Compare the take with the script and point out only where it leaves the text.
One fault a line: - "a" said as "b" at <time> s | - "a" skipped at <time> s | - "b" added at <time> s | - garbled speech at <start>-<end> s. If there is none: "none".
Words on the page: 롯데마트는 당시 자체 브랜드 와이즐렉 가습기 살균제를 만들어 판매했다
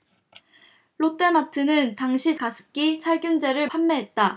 - "자체 브랜드 와이즐렉" skipped at 2.4 s
- "만들어" skipped at 3.7 s